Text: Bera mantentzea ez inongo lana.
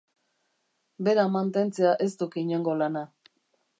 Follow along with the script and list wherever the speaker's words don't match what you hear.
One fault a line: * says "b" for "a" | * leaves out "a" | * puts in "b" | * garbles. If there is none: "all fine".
* puts in "duk"